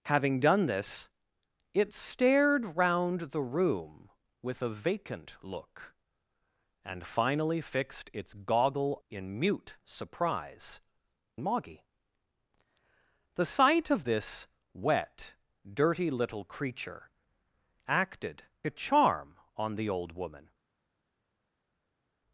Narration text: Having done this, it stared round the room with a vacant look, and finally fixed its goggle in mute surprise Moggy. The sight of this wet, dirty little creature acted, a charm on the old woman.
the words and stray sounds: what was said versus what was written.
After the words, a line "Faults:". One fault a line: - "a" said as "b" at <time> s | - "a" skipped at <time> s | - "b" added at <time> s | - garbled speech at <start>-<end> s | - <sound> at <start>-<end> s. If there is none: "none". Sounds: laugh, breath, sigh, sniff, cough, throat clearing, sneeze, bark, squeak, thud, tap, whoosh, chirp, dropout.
Having done this, it stared round the room with a vacant look, and finally fixed its goggle in mute surprise Moggy. The sight of this wet, dirty little creature acted, a charm on the old woman.
Faults:
none